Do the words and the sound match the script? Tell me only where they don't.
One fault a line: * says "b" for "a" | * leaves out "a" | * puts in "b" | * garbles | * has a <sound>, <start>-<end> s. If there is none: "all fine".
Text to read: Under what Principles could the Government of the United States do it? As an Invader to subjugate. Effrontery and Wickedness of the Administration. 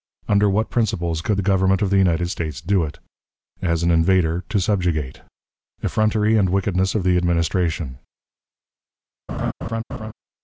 * has a laugh, 9.3-10.1 s